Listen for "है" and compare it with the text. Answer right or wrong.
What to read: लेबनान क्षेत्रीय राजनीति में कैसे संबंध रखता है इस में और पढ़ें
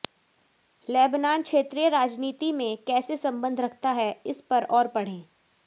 right